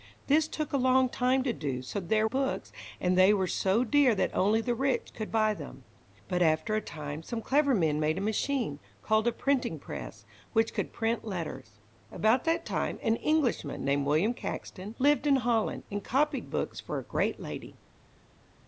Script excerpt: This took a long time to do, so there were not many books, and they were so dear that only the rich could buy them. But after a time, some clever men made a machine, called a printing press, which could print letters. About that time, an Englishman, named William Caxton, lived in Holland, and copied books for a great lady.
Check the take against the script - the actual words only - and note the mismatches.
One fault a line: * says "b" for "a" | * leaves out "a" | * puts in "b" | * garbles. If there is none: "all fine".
* leaves out "were not many"